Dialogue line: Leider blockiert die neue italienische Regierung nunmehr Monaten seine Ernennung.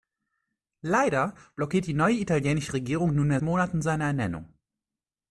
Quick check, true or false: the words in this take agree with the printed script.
true